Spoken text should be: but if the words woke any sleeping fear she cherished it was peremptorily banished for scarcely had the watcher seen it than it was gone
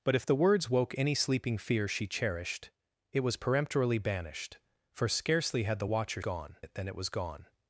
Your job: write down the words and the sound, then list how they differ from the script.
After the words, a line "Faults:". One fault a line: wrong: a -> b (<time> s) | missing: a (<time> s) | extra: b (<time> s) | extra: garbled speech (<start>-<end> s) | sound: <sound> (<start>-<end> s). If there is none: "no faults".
but if the words woke any sleeping fear she cherished it was peremptorily banished for scarcely had the watcher gone it than it was gone
Faults:
wrong: seen -> gone (6.2 s)